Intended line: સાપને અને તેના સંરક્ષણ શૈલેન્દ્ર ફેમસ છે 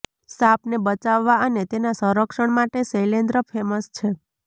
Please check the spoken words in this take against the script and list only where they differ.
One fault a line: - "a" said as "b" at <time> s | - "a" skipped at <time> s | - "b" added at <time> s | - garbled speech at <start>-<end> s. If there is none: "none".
- "બચાવવા" added at 0.8 s
- "માટે" added at 2.6 s